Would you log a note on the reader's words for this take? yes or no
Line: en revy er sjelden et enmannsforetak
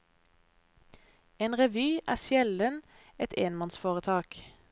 no